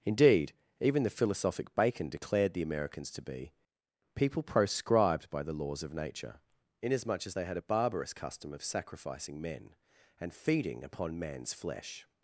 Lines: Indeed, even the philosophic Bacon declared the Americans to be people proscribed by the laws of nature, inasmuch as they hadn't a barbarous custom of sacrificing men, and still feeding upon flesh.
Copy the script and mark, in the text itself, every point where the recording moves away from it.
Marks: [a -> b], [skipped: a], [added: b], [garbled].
Indeed, even the philosophic Bacon declared the Americans to be people proscribed by the laws of nature, inasmuch as they [hadn't -> had] a barbarous custom of sacrificing men, and [skipped: still] feeding upon [added: man's] flesh.